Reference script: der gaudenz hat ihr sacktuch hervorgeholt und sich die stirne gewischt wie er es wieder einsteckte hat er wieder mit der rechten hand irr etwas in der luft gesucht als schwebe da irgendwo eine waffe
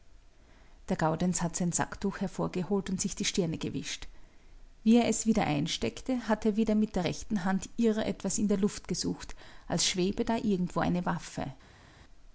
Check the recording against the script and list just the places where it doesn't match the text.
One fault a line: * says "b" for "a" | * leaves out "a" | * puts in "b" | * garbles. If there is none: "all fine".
* says "sein" for "ihr"